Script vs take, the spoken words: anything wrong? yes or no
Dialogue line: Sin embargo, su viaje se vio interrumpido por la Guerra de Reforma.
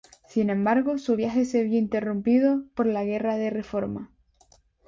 no